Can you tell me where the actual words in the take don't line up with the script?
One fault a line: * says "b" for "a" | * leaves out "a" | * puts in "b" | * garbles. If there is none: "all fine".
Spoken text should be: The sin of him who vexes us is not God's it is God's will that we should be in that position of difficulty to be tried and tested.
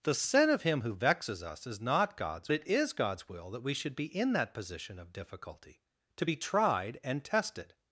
all fine